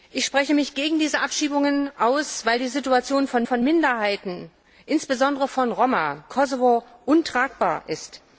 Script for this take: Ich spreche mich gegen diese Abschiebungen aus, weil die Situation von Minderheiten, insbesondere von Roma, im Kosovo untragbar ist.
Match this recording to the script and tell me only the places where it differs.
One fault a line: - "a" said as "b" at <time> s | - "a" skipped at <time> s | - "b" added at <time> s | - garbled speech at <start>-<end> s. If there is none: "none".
- "von" added at 3.4 s
- "im" skipped at 6.2 s